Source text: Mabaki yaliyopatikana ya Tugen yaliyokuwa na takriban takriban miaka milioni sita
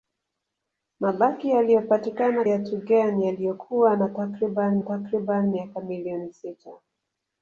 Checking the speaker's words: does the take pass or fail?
pass